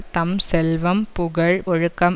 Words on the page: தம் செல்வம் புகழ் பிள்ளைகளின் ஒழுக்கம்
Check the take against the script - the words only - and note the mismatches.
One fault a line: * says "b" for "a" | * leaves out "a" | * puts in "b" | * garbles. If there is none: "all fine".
* leaves out "பிள்ளைகளின்"